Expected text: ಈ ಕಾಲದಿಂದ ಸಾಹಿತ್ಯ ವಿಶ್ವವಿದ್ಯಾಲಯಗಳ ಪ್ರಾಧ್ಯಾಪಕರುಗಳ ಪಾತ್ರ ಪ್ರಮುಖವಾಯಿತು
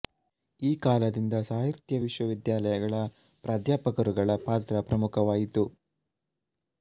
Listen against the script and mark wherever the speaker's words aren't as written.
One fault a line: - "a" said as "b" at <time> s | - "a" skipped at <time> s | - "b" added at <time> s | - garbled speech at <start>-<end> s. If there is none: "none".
none